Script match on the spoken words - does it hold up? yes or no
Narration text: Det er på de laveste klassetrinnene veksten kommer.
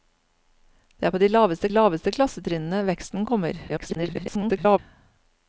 no